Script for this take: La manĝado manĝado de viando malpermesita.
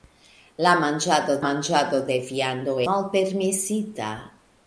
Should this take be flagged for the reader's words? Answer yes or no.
no